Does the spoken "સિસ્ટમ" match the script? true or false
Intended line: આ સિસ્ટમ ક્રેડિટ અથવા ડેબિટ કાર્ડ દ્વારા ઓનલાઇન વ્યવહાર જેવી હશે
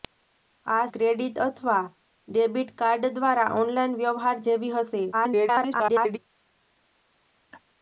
false